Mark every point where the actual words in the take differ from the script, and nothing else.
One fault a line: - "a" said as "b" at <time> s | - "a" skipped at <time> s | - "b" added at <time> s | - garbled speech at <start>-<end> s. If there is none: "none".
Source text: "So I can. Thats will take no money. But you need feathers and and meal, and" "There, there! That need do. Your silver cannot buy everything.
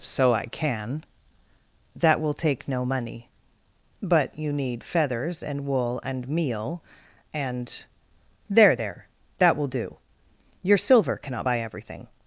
- "Thats" said as "That" at 1.9 s
- "wool" added at 5.7 s
- "need" said as "will" at 9.6 s